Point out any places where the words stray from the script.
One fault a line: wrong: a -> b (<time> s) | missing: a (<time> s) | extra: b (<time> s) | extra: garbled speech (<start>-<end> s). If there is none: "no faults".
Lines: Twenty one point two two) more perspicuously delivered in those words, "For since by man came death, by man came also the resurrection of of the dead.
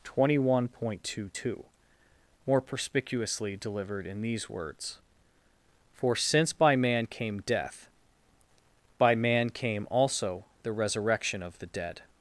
wrong: those -> these (4.2 s)
missing: of (11.6 s)